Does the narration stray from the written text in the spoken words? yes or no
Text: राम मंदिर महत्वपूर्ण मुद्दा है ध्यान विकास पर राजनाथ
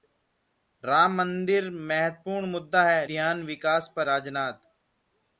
no